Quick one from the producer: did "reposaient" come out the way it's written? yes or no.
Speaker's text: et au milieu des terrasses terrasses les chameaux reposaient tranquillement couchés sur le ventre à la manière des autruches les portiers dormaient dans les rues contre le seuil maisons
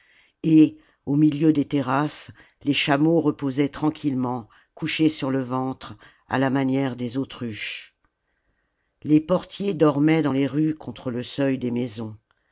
yes